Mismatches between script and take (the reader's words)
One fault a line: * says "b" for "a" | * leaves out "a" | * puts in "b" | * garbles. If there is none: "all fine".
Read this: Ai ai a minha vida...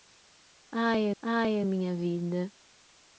all fine